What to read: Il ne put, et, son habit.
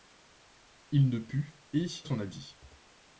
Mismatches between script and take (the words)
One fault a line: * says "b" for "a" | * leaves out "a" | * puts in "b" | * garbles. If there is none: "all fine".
all fine